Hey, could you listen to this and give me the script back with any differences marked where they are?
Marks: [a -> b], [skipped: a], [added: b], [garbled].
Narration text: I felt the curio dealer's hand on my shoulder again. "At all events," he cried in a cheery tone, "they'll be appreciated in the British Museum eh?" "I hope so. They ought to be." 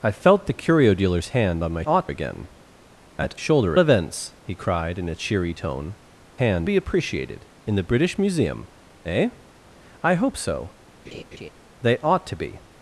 I felt the curio dealer's hand on my [shoulder -> ought] again. "At [all -> shoulder] events," he cried in a cheery tone, ["they'll -> hand] be appreciated in the British Museum eh?" "I hope so. They ought to be."